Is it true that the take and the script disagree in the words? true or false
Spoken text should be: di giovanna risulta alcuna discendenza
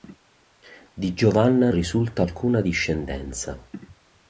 false